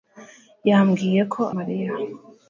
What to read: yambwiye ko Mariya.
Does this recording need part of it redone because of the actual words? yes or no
no